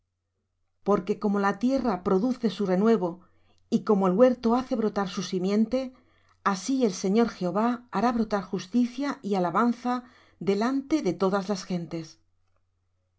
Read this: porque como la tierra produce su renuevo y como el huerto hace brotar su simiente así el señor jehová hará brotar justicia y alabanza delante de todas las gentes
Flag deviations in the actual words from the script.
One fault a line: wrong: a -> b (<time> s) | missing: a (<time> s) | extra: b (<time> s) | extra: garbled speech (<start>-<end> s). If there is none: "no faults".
no faults